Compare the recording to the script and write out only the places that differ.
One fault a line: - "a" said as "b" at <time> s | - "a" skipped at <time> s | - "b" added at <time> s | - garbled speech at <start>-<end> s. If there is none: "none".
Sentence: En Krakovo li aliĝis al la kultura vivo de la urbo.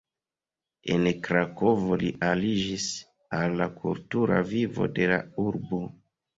none